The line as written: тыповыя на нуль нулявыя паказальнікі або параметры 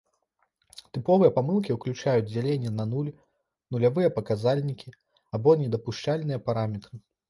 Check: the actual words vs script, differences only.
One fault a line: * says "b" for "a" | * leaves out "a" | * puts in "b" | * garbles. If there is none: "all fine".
* puts in "памылкі ўключаюць дзяленне"
* puts in "недапушчальныя"